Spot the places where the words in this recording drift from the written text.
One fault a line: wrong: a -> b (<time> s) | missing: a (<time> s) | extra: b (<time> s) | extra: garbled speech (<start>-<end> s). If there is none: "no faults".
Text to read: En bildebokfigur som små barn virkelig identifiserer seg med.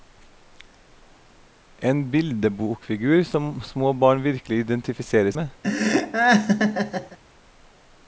missing: seg (5.3 s)